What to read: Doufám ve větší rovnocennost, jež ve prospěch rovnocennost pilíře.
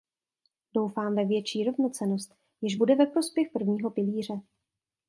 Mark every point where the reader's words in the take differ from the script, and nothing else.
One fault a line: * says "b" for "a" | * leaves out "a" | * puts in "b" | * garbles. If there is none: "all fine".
* puts in "bude"
* says "prvního" for "rovnocennost"